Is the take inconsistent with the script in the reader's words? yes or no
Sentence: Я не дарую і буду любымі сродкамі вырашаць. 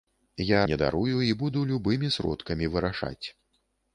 no